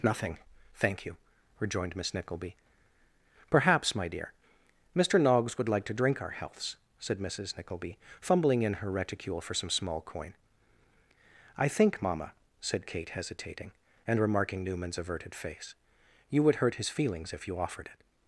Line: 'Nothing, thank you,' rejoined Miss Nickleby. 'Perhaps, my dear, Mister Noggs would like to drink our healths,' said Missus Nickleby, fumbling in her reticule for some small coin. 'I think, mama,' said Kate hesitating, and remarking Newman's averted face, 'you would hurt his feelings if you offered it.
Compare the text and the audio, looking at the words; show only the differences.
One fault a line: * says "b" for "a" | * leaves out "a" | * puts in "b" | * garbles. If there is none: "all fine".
all fine